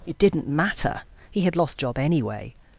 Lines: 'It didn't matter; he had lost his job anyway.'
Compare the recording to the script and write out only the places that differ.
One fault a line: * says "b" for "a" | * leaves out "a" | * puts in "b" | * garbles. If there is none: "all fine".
* leaves out "his"